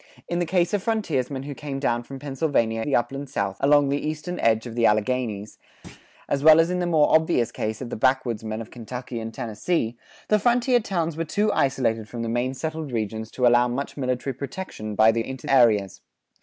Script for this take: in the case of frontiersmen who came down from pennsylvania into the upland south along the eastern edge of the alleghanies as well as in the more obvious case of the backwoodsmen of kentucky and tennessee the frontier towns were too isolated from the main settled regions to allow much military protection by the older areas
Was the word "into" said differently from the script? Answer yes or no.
yes